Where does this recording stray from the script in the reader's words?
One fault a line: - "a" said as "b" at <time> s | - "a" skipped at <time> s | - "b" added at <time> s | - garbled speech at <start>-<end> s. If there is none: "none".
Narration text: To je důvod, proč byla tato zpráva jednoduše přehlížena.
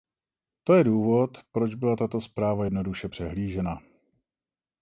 none